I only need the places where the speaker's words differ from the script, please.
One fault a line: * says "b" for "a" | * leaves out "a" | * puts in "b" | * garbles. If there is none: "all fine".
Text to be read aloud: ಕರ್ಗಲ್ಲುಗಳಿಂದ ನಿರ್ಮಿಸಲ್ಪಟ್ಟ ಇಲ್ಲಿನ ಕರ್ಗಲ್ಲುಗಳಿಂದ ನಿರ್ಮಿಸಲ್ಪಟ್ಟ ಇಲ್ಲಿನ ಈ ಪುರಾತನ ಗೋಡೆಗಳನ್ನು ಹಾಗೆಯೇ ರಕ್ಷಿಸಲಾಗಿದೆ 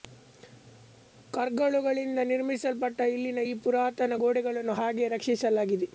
* leaves out "ಕರ್ಗಲ್ಲುಗಳಿಂದ ನಿರ್ಮಿಸಲ್ಪಟ್ಟ ಇಲ್ಲಿನ"